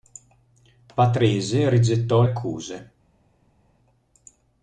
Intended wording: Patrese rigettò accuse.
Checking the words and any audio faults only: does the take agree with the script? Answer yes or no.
yes